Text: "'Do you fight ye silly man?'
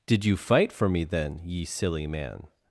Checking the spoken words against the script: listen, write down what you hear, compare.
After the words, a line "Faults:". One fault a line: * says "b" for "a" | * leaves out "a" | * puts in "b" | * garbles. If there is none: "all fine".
"'Did you fight for me then, ye silly man?'
Faults:
* says "Did" for "Do"
* puts in "for me then"